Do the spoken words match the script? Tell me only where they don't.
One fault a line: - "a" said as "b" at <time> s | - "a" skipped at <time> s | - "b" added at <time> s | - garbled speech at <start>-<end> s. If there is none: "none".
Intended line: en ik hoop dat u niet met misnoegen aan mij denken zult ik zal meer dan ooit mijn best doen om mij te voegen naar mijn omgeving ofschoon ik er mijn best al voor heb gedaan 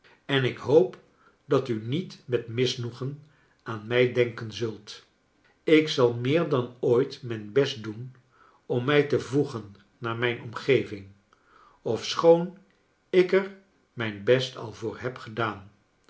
none